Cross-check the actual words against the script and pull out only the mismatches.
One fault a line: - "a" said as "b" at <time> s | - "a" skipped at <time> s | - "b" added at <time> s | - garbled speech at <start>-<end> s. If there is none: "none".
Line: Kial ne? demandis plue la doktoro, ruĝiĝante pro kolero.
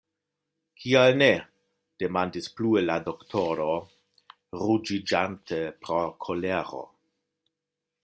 none